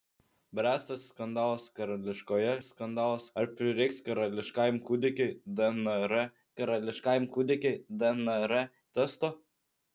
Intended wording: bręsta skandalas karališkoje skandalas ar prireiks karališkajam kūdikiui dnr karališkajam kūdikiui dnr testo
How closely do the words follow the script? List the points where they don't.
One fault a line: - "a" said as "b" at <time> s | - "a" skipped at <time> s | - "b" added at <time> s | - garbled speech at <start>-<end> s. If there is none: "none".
none